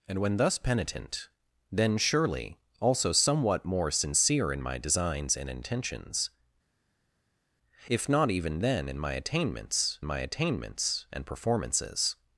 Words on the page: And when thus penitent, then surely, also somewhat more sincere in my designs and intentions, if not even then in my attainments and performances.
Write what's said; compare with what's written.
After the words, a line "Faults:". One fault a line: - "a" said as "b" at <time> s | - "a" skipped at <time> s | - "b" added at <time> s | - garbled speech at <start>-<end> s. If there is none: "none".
And when thus penitent, then surely, also somewhat more sincere in my designs and intentions, if not even then in my attainments my attainments and performances.
Faults:
- "my attainments" added at 10.1 s